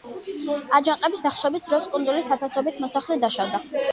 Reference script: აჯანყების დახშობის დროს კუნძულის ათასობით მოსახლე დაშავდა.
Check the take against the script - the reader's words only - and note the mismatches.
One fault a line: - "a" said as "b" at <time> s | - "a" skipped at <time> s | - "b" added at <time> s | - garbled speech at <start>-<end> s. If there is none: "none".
none